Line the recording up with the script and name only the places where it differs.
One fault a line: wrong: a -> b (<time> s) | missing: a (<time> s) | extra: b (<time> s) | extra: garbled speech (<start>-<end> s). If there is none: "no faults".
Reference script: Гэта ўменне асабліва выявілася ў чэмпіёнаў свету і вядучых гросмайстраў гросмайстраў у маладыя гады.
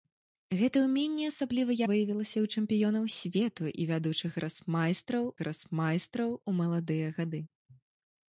no faults